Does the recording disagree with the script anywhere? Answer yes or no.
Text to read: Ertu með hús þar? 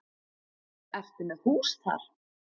no